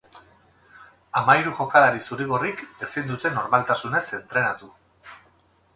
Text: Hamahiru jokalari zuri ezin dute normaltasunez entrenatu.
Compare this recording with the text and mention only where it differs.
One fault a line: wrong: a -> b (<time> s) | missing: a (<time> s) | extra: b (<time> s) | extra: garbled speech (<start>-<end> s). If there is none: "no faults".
extra: gorrik (2.3 s)